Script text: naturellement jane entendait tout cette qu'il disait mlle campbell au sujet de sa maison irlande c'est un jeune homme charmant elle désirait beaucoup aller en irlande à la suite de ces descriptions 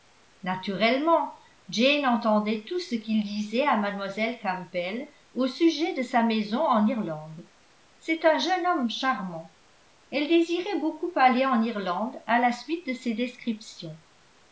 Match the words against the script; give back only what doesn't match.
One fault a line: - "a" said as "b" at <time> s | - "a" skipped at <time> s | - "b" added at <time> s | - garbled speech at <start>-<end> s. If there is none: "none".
- "cette" said as "ce" at 2.8 s
- "à" added at 3.7 s
- "en" added at 6.7 s